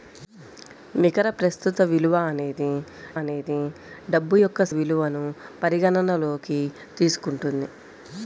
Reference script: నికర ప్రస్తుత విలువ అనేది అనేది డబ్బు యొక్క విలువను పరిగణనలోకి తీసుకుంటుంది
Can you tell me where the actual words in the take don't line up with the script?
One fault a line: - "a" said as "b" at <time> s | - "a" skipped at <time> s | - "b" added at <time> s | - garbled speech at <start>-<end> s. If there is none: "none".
none